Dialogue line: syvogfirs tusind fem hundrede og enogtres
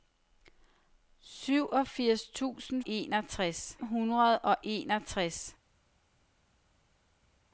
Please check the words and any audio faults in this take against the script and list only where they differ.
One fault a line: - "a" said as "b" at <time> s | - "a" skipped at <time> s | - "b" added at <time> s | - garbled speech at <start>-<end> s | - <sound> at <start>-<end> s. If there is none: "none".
- "fem" said as "enogtres" at 2.9 s